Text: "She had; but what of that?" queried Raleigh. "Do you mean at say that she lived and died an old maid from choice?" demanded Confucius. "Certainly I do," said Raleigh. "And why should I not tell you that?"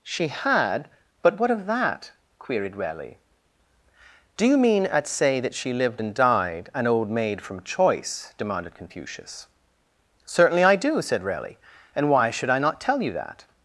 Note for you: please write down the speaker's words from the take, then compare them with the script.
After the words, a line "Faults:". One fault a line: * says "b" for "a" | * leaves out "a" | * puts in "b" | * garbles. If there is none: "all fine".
"She had; but what of that?" queried Raleigh. "Do you mean at say that she lived and died an old maid from choice?" demanded Confucius. "Certainly I do," said Raleigh. "And why should I not tell you that?"
Faults:
all fine